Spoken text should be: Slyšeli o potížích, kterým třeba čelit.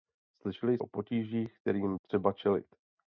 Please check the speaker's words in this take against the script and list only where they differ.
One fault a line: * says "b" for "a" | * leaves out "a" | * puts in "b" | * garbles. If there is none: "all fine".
all fine